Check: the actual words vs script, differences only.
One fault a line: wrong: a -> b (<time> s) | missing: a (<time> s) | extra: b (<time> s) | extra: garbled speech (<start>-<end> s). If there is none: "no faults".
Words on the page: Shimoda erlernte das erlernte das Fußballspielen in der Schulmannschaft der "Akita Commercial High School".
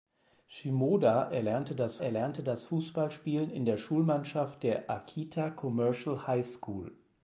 no faults